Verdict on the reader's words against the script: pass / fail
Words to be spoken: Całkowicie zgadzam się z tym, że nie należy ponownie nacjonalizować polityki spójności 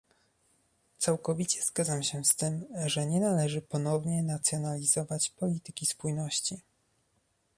pass